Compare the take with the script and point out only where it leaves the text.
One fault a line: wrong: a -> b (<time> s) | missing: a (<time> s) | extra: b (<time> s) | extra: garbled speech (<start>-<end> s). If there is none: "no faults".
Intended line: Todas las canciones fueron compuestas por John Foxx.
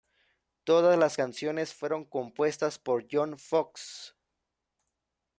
no faults